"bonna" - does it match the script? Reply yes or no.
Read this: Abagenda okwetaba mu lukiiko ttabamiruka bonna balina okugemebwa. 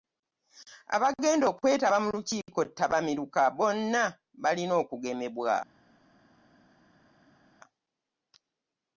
yes